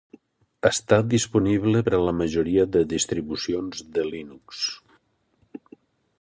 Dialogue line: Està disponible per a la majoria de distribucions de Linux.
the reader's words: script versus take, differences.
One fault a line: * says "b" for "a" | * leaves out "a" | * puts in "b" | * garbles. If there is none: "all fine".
all fine